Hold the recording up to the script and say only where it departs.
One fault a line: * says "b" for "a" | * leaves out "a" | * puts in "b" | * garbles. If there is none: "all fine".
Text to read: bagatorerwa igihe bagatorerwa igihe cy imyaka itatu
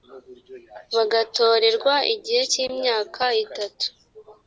* leaves out "bagatorerwa igihe"